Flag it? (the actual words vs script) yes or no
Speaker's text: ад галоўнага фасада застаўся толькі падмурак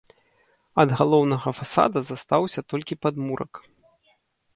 no